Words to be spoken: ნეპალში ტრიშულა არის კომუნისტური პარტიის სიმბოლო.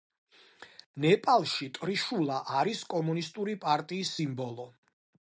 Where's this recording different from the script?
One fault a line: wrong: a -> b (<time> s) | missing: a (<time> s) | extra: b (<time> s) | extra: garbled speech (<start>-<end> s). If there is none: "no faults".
no faults